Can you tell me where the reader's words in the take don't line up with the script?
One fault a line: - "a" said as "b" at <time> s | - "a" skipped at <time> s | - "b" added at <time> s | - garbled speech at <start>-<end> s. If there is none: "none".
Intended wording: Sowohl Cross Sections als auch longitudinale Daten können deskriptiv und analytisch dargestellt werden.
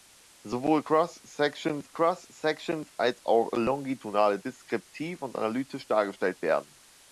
- "Cross Sections" added at 1.9 s
- "Daten können" skipped at 4.4 s